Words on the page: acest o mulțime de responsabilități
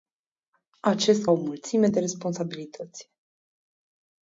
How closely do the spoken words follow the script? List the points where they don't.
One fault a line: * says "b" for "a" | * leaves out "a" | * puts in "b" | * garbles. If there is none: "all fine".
all fine